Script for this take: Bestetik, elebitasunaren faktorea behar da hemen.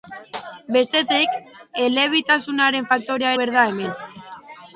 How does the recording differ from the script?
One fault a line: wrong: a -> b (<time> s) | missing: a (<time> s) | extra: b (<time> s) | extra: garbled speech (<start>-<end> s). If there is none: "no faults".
no faults